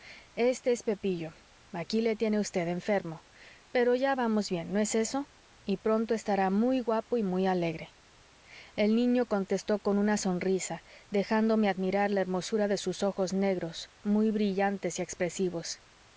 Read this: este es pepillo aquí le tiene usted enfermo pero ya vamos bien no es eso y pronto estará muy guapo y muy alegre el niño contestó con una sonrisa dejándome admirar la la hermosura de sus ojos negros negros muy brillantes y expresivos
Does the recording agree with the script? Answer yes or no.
no